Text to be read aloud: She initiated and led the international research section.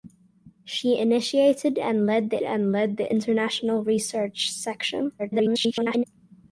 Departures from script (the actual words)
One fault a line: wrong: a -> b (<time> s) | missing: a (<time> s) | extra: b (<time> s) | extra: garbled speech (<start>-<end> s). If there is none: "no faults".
extra: and led the (2.4 s)
extra: garbled speech (5.2-6.0 s)